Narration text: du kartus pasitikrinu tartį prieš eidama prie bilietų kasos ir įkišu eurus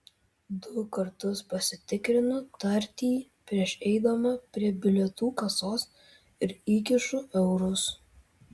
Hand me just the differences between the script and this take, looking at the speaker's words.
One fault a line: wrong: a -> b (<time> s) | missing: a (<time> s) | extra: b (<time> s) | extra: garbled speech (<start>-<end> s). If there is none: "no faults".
no faults